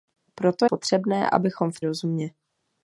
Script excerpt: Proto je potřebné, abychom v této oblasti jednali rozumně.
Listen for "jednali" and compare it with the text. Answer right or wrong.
wrong